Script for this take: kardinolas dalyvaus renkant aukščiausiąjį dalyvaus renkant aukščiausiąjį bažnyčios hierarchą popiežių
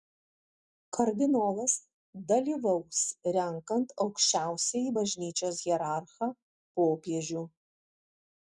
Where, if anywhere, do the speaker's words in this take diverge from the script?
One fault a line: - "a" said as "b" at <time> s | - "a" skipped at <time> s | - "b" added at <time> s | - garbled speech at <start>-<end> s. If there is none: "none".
- "dalyvaus renkant aukščiausiąjį" skipped at 5.0 s